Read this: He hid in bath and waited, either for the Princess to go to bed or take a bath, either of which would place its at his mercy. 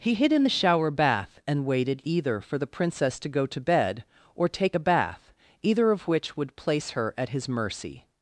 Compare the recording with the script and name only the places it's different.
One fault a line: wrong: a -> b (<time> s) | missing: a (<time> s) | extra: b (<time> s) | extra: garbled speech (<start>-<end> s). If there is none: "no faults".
extra: the shower (0.4 s)
wrong: its -> her (6.9 s)